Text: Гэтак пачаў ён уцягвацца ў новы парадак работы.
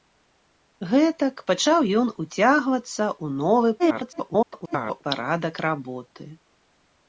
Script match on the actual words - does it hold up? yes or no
no